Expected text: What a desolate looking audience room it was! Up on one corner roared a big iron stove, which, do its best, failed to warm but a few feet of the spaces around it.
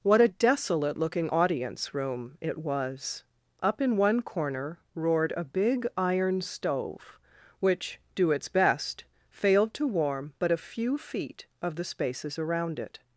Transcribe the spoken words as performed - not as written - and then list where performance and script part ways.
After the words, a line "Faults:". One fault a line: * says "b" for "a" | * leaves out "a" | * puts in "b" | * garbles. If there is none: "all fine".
What a desolate looking audience room it was! Up in one corner roared a big iron stove, which, do its best, failed to warm but a few feet of the spaces around it.
Faults:
* says "in" for "on"